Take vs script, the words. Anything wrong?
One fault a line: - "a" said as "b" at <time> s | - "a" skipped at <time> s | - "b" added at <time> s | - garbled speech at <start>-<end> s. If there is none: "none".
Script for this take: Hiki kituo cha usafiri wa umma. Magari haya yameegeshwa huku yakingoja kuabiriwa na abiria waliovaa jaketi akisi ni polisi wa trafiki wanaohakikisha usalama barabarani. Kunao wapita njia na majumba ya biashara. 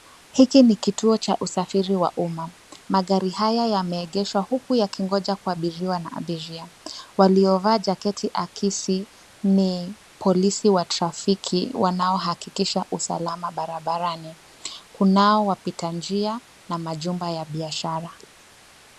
- "ni" added at 0.6 s